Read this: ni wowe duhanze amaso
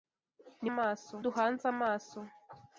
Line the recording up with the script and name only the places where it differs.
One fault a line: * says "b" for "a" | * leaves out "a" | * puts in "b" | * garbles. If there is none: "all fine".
* says "amaso" for "wowe"